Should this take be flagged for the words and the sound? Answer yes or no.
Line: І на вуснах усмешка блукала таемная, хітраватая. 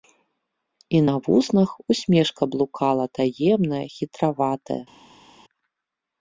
no